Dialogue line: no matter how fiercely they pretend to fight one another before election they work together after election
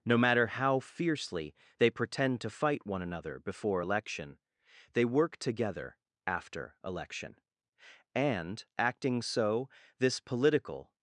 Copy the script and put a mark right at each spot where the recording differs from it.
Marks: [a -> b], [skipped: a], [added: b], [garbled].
no matter how fiercely they pretend to fight one another before election they work together after election [added: and acting so this political]